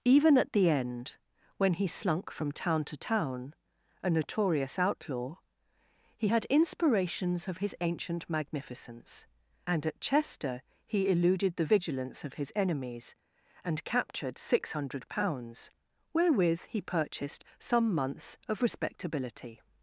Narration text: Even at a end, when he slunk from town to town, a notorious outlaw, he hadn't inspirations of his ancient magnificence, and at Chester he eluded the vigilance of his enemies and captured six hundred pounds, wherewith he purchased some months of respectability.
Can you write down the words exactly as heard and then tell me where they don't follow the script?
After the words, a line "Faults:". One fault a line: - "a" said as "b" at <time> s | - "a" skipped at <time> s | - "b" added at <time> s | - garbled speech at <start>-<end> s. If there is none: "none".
Even at the end, when he slunk from town to town, a notorious outlaw, he had inspirations of his ancient magnificence, and at Chester he eluded the vigilance of his enemies and captured six hundred pounds, wherewith he purchased some months of respectability.
Faults:
- "a" said as "the" at 0.5 s
- "hadn't" said as "had" at 6.3 s